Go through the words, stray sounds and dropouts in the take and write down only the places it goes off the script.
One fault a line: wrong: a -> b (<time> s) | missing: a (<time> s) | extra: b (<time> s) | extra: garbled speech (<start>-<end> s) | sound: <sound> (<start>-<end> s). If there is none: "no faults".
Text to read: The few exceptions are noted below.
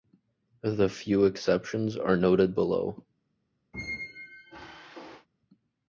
sound: squeak (3.7-5.3 s)